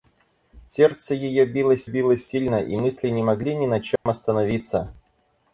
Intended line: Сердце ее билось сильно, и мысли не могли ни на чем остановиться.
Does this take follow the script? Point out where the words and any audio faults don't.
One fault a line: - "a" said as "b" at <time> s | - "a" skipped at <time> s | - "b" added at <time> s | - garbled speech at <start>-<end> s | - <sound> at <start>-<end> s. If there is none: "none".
- "билось" added at 1.8 s
- dropout at 4.0-4.1 s